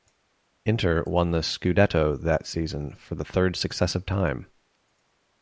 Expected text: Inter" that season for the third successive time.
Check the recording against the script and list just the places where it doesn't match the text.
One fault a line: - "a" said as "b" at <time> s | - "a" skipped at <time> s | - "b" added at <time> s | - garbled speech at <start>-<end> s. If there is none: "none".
- "won the Scudetto" added at 1.1 s